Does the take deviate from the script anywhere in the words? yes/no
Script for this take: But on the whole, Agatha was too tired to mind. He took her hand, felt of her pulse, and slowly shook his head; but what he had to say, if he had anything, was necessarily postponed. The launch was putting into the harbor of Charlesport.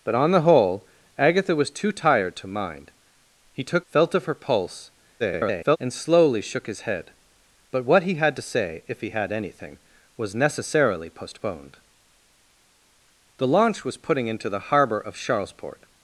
yes